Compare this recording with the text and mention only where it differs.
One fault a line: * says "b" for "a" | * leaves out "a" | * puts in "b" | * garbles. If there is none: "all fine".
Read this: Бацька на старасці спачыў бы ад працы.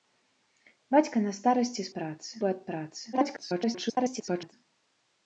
* says "працы" for "спачыў"
* garbles